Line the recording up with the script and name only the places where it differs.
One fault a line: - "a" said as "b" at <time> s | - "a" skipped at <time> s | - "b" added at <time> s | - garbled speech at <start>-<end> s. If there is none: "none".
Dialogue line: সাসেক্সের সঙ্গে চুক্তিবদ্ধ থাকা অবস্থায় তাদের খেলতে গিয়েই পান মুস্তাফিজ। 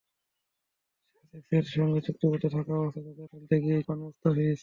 none